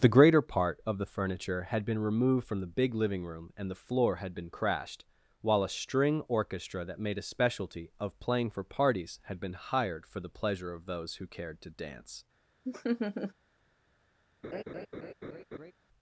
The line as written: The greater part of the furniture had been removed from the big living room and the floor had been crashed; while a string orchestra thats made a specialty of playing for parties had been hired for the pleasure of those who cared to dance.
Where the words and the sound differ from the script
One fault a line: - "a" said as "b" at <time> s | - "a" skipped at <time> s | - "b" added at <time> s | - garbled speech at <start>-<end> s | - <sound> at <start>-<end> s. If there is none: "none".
- "thats" said as "that" at 6.8 s
- laugh at 12.6-13.3 s
- laugh at 14.4-15.7 s